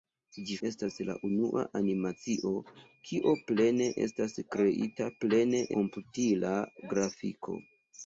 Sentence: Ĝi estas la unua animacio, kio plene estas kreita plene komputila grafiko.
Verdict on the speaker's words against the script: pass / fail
pass